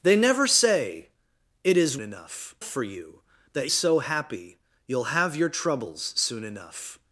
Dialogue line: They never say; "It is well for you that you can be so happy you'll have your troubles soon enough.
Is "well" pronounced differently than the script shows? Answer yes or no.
yes